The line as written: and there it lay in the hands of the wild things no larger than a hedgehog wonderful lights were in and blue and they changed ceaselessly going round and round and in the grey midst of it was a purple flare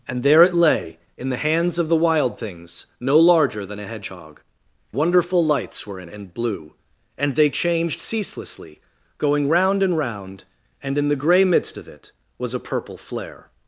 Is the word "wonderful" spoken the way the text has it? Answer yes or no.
yes